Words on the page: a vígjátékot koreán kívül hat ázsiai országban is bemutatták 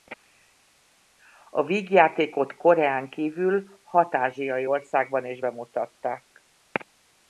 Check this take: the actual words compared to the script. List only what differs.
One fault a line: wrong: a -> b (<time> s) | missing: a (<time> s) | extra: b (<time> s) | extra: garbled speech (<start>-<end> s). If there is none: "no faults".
no faults